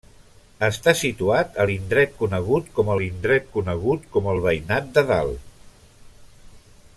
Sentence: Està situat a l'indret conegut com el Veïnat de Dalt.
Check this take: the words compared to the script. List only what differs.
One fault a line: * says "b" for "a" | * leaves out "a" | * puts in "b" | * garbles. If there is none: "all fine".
* puts in "l'indret conegut com"